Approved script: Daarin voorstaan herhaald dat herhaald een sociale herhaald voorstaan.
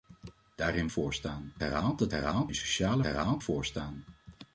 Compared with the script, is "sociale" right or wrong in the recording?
right